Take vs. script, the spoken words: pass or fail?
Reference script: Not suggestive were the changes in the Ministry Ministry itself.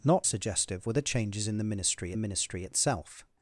pass